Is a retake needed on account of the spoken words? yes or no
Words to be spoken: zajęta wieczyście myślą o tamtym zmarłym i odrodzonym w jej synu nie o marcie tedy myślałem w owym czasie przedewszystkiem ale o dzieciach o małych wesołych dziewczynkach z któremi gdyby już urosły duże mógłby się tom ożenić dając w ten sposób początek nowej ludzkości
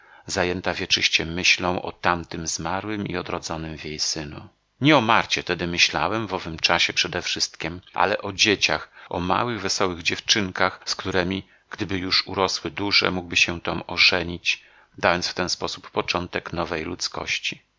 no